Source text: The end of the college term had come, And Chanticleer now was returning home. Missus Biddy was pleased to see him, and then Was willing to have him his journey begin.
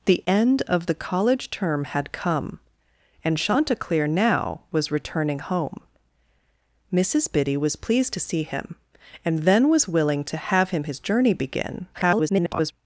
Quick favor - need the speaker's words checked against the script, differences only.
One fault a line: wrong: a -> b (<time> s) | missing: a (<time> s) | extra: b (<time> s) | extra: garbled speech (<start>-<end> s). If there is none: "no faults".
extra: garbled speech (11.9-12.7 s)